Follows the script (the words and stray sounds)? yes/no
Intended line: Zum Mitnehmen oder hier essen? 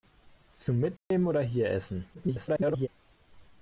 no